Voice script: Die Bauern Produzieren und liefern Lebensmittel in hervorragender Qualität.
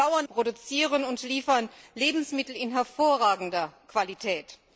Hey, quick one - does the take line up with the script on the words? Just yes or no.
yes